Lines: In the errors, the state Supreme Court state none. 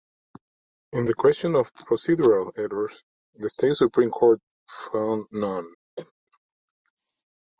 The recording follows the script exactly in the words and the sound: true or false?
false